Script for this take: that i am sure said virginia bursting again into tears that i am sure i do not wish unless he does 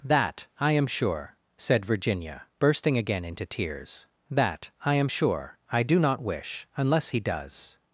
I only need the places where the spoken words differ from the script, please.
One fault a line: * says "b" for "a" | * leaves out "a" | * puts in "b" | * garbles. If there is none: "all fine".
all fine